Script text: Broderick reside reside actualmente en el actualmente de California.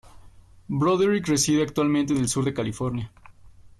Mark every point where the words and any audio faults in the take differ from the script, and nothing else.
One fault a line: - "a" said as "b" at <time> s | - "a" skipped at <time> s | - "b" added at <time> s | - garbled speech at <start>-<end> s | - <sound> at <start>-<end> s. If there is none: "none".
- "reside" skipped at 1.6 s
- "actualmente" said as "sur" at 2.3 s